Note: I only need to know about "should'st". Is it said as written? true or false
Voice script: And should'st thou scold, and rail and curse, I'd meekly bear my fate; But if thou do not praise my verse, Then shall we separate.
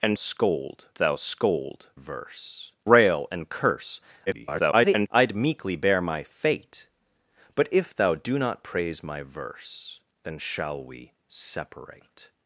false